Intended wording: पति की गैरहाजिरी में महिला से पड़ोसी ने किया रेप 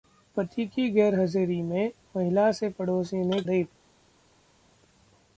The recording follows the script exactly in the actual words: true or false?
false